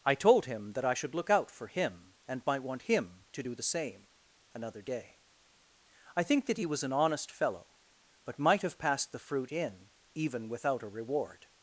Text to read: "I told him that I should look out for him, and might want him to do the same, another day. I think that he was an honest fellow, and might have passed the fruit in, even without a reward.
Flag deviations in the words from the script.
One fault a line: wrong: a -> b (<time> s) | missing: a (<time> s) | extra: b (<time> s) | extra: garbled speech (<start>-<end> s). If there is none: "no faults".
wrong: and -> but (8.2 s)